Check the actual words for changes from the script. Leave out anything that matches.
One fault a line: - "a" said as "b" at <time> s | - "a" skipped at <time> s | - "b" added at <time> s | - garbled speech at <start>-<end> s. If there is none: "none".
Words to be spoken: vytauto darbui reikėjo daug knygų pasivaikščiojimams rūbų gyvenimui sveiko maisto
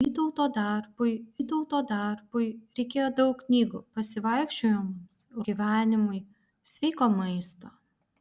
- "vytauto darbui" added at 1.3 s
- "rūbų" skipped at 5.3 s